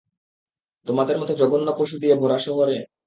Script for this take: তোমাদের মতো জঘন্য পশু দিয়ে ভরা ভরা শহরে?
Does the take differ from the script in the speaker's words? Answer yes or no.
yes